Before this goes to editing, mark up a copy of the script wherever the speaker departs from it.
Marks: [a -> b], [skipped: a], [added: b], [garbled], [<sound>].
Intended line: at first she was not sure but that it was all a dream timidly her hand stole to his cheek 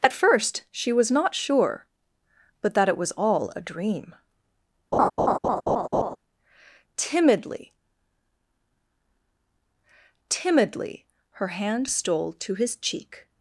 at first she was not sure but that it was all a dream [laugh] timidly [added: timidly] her hand stole to his cheek